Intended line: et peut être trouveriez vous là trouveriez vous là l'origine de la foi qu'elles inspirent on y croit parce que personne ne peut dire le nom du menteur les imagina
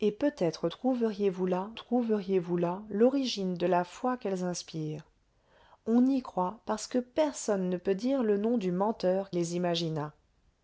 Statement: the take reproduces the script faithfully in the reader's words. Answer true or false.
true